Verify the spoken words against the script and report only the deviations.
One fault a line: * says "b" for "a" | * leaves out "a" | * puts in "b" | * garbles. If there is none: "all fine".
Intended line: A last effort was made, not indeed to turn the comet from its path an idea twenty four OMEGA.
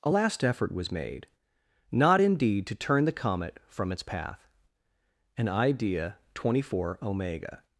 all fine